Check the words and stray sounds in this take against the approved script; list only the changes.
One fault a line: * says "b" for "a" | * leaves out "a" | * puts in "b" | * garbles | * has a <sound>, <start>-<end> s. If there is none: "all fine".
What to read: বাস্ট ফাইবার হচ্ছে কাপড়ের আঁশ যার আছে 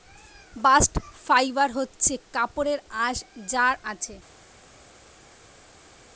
all fine